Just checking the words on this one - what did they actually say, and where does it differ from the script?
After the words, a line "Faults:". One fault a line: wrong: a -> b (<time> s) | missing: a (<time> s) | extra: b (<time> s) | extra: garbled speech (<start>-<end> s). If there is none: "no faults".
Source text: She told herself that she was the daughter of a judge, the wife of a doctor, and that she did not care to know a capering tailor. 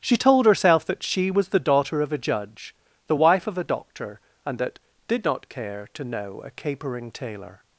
She told herself that she was the daughter of a judge, the wife of a doctor, and that did not care to know a capering tailor.
Faults:
missing: she (4.8 s)